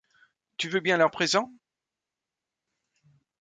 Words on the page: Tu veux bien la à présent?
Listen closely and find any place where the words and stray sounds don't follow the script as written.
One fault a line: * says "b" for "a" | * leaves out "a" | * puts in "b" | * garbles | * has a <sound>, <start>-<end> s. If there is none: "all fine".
all fine